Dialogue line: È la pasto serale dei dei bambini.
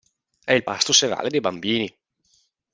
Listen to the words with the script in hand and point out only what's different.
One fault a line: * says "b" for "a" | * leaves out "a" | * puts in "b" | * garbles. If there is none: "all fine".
* says "il" for "la"
* leaves out "dei"